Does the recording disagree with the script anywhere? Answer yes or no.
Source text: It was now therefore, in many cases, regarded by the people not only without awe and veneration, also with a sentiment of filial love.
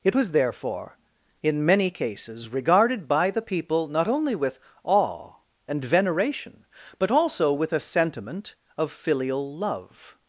yes